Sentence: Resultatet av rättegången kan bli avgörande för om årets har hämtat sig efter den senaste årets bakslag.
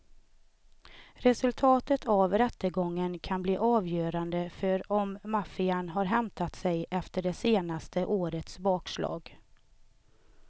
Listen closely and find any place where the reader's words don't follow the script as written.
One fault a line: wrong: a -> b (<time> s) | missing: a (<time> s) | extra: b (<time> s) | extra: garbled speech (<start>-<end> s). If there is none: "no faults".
wrong: årets -> maffian (5.2 s)
wrong: den -> det (7.2 s)